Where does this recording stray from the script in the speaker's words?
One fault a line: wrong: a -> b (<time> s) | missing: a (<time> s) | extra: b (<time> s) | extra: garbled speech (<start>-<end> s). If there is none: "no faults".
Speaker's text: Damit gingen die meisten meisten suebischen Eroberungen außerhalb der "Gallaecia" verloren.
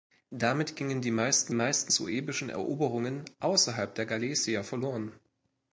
no faults